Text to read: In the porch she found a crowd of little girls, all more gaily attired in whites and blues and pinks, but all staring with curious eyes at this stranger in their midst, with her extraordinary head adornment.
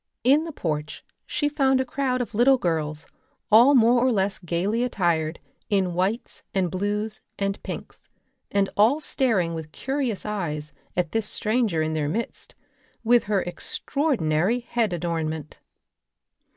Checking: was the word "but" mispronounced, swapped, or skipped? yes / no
yes